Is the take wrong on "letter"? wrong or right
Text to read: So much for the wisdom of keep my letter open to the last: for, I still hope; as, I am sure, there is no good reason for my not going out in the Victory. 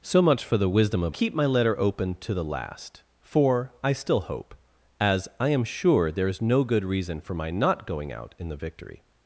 right